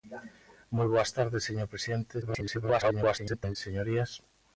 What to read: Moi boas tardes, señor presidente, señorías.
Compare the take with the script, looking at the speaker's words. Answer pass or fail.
fail